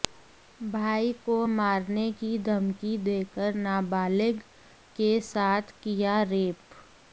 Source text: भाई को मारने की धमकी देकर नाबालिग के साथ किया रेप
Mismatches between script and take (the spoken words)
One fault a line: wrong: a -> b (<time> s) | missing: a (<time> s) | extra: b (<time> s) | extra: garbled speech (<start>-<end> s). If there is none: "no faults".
no faults